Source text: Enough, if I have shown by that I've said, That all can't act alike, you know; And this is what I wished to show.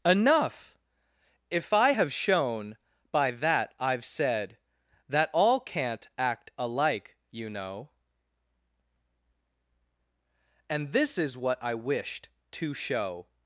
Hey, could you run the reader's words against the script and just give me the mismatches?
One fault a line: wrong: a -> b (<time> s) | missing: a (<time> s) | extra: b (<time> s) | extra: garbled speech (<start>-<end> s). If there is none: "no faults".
no faults